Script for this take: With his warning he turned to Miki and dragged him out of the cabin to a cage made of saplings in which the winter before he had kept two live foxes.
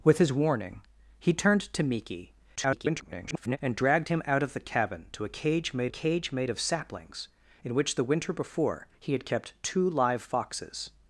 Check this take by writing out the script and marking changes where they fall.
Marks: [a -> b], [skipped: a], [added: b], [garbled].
With his warning he turned to Miki [garbled] and dragged him out of the cabin to a cage made [added: cage made] of saplings in which the winter before he had kept two live foxes.